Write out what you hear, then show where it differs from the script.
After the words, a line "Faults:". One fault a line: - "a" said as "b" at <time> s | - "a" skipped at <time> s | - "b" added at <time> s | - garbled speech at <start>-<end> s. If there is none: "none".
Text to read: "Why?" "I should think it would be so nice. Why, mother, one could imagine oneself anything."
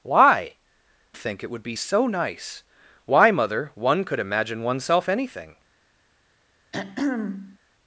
"Why?" "think it would be so nice. Why, mother, one could imagine oneself anything."
Faults:
- "I should" skipped at 0.6 s